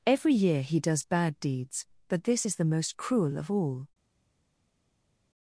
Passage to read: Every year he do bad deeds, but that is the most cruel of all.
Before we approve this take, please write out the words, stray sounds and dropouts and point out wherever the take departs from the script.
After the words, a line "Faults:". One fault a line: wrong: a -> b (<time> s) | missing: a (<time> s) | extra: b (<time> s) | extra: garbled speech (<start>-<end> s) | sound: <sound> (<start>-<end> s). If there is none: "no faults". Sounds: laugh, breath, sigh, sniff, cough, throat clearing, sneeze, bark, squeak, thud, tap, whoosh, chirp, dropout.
Every year he does bad deeds, but this is the most cruel of all.
Faults:
wrong: do -> does (0.8 s)
wrong: that -> this (2.2 s)